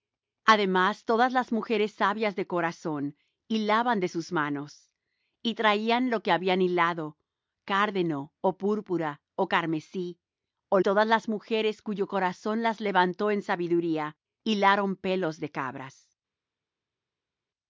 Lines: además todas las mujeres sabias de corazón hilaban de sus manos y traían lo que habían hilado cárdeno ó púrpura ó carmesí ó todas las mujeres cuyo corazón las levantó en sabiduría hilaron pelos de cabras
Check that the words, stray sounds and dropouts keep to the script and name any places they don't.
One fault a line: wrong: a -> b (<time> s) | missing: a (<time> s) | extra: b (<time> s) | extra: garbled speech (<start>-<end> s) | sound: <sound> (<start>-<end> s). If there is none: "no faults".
no faults